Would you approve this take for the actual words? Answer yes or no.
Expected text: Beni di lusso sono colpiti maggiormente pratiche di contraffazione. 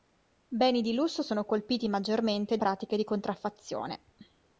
yes